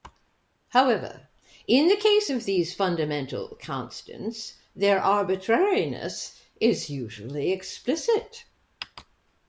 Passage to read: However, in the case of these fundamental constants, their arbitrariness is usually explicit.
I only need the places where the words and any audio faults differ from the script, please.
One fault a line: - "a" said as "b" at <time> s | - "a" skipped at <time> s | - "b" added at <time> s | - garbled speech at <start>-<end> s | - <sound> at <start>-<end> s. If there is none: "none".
none